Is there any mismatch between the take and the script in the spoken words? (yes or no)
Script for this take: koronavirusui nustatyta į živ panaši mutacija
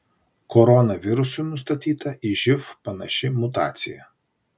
no